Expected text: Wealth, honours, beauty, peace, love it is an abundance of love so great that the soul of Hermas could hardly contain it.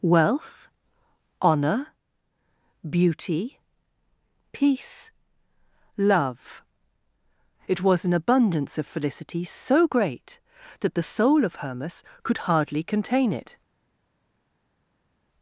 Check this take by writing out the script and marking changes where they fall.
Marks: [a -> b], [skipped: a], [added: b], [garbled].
Wealth, [honours, -> honour] beauty, peace, love it [is -> was] an abundance of [love -> felicity] so great that the soul of Hermas could hardly contain it.